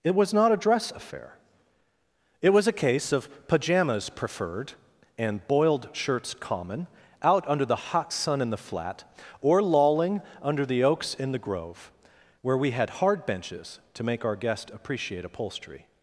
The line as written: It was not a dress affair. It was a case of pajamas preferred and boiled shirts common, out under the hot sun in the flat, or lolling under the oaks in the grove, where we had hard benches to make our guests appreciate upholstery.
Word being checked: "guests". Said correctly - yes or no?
no